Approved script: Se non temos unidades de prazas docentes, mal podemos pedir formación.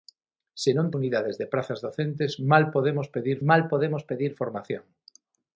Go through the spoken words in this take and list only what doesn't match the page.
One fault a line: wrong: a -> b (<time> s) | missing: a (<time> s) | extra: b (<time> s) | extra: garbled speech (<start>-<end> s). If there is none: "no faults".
missing: temos (0.9 s)
extra: mal podemos pedir (3.5 s)